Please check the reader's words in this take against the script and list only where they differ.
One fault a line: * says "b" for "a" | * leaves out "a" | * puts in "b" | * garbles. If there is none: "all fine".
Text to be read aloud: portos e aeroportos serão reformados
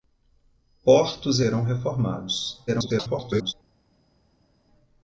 * leaves out "aeroportos"
* garbles